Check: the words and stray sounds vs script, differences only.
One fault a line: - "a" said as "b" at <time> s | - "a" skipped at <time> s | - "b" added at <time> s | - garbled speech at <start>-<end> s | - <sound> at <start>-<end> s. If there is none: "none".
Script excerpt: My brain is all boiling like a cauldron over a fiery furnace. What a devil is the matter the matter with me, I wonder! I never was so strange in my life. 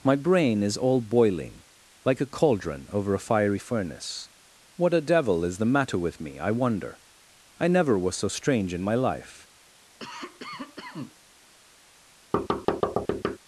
- "the matter" skipped at 6.0 s
- cough at 10.0-11.2 s
- thud at 12.3-13.4 s